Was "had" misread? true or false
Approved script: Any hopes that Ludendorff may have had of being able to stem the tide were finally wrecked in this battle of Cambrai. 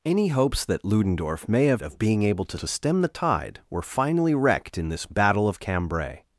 true